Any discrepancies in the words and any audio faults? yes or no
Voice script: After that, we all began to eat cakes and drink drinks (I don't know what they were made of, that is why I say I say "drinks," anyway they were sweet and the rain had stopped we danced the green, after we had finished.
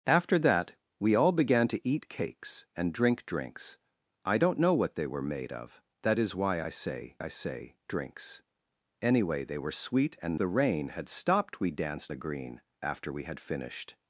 no